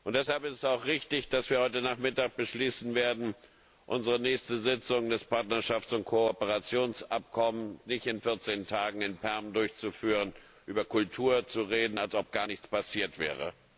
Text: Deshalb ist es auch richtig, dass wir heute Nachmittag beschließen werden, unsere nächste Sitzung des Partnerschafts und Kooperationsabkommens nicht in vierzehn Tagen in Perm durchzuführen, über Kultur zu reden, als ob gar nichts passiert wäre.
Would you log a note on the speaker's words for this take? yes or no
no